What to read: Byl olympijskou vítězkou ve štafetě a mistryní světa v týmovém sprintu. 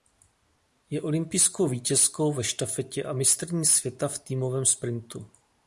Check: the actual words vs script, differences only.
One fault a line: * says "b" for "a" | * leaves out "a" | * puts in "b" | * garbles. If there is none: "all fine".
* says "Je" for "Byl"